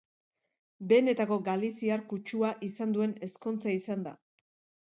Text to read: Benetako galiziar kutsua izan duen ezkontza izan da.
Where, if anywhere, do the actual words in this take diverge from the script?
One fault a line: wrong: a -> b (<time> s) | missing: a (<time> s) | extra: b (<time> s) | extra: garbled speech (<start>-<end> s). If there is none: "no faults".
no faults